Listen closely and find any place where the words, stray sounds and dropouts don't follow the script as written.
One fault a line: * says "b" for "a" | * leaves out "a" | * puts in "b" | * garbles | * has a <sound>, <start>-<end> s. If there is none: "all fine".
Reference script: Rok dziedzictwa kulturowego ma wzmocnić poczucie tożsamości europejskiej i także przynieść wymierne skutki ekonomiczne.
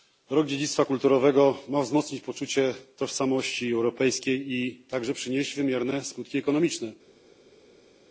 all fine